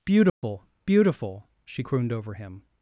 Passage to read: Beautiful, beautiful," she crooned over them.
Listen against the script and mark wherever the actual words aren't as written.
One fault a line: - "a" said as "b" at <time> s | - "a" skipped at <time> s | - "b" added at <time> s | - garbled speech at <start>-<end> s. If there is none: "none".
- "them" said as "him" at 2.3 s